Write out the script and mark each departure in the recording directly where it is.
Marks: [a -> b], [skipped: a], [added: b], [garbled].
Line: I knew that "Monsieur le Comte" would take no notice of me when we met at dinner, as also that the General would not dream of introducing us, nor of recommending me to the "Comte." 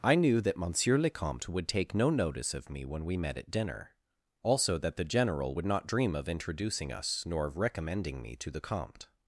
I knew that "Monsieur le Comte" would take no notice of me when we met at dinner, [skipped: as] also that the General would not dream of introducing us, nor of recommending me to the "Comte."